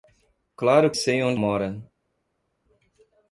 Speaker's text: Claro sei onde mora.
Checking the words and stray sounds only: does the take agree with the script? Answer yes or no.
yes